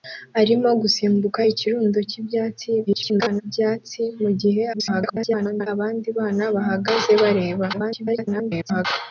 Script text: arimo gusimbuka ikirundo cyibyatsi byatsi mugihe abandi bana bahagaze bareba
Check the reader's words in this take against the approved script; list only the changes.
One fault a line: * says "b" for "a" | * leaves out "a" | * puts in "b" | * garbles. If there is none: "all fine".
* garbles
* garbles
* garbles